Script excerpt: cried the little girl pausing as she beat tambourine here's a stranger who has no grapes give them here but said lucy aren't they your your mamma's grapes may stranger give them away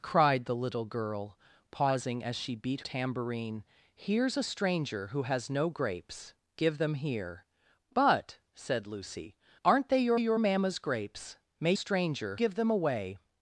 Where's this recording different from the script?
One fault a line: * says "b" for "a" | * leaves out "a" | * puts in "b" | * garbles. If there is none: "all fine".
all fine